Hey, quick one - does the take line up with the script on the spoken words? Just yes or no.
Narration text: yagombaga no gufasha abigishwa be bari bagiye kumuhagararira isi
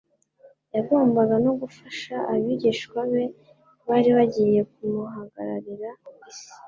yes